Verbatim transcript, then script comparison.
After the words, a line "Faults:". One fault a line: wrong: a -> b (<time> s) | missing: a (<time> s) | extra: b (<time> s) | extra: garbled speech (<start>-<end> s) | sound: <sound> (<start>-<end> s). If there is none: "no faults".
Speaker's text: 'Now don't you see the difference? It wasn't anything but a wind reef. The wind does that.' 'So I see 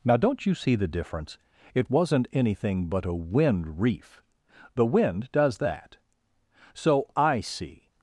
'Now don't you see the difference? It wasn't anything but a wind reef. The wind does that.' 'So I see
Faults:
no faults